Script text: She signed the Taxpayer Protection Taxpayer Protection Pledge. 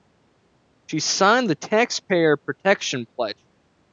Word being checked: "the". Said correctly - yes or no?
yes